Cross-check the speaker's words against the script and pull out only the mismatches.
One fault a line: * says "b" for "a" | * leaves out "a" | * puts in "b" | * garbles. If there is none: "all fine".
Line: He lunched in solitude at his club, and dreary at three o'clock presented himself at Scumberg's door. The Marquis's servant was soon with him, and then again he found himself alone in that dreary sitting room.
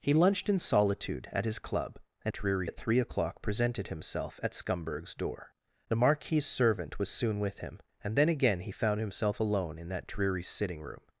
all fine